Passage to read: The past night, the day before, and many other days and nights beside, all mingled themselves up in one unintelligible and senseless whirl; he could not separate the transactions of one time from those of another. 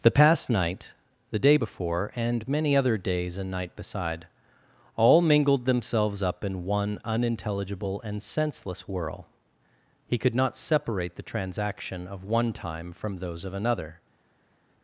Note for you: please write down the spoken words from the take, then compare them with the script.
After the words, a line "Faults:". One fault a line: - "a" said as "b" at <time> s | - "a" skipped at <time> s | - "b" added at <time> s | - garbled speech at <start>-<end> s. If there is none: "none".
The past night, the day before, and many other days and night beside, all mingled themselves up in one unintelligible and senseless whirl; he could not separate the transaction of one time from those of another.
Faults:
- "nights" said as "night" at 3.5 s
- "transactions" said as "transaction" at 11.2 s